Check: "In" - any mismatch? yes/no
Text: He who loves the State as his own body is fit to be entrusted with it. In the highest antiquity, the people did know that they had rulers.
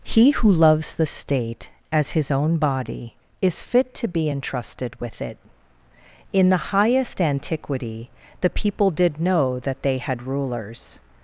no